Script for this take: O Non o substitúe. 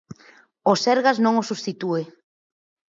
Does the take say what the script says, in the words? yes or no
no